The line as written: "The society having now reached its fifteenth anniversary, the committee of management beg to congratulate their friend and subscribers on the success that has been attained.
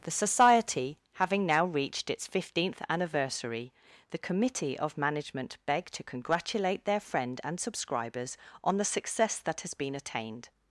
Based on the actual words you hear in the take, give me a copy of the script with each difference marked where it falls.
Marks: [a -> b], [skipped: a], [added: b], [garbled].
"The society having now reached its fifteenth anniversary, the committee of management beg to congratulate their friend and subscribers on the success that has been attained.